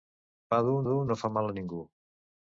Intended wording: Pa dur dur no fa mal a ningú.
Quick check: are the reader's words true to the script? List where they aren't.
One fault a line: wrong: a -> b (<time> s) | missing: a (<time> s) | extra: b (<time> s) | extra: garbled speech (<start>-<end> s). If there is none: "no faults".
no faults